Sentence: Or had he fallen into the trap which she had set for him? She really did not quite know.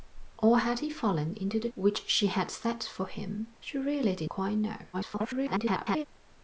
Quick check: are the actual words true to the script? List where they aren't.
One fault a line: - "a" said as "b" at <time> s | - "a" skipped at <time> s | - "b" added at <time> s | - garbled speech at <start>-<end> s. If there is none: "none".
- "trap" skipped at 1.7 s
- "not" skipped at 4.3 s
- garbled speech at 4.9-6.0 s